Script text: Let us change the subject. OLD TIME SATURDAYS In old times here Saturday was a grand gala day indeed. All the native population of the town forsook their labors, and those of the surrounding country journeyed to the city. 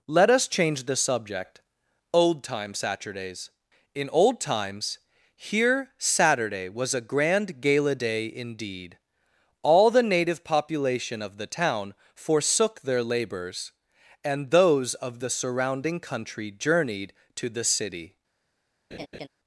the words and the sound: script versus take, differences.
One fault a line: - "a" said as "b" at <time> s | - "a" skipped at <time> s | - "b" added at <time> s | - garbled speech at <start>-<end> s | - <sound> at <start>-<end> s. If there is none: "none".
- laugh at 18.9-19.3 s